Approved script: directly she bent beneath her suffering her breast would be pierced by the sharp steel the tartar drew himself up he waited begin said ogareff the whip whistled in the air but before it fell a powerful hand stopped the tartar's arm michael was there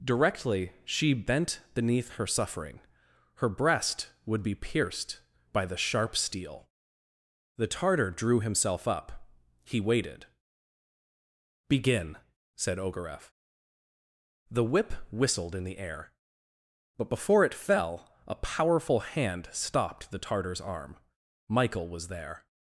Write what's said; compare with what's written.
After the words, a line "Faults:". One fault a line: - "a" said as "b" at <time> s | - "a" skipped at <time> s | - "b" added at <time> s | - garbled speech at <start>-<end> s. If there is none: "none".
directly she bent beneath her suffering her breast would be pierced by the sharp steel the tartar drew himself up he waited begin said ogareff the whip whistled in the air but before it fell a powerful hand stopped the tartar's arm michael was there
Faults:
none